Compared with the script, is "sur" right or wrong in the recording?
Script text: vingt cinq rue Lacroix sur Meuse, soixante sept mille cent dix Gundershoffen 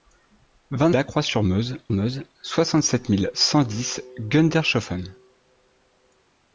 right